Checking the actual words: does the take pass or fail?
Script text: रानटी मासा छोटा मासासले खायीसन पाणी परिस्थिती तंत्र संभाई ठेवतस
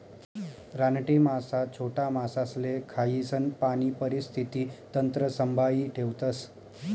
pass